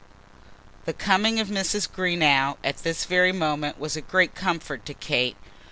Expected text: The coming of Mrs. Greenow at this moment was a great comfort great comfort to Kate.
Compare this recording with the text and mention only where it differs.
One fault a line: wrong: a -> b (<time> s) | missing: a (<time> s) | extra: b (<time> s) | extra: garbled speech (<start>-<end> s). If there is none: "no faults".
extra: very (3.0 s)
missing: great comfort (4.8 s)